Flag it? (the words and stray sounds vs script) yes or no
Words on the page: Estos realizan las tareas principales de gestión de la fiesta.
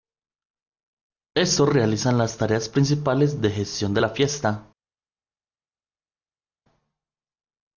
no